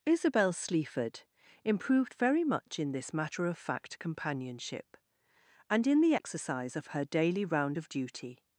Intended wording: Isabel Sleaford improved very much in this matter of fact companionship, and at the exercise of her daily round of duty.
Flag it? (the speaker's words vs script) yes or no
yes